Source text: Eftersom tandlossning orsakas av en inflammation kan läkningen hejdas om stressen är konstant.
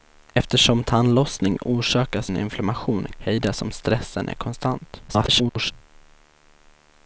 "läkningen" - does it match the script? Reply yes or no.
no